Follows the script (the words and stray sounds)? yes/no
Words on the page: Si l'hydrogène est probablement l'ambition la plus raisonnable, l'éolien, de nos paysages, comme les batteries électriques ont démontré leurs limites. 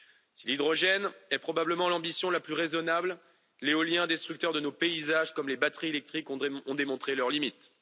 no